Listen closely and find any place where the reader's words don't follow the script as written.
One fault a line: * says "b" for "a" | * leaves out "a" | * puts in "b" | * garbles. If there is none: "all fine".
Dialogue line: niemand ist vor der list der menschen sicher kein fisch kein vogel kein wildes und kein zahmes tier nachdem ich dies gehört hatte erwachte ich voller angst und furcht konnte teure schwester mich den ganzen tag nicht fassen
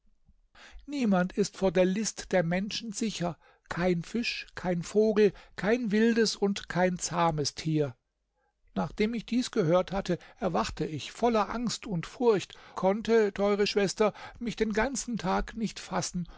all fine